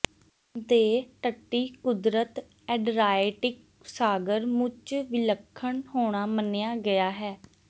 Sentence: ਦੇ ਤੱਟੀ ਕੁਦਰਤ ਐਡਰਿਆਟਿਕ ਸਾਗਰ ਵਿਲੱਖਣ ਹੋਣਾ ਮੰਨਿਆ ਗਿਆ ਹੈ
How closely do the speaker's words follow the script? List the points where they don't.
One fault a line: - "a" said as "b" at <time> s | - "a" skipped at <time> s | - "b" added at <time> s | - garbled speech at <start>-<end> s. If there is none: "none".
- "ਮੁੱਚ" added at 4.5 s